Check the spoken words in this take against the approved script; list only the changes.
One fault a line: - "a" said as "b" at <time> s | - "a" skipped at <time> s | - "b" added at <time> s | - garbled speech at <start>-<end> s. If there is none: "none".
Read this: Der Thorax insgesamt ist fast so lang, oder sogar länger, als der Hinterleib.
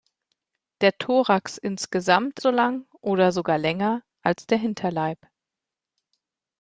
- "ist fast" skipped at 2.4 s